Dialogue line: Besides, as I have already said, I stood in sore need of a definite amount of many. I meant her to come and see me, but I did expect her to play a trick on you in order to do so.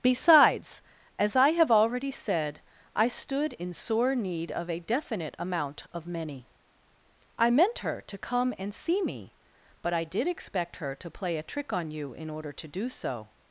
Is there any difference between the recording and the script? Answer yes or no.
no